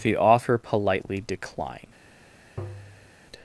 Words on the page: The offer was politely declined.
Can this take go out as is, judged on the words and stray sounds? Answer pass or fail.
fail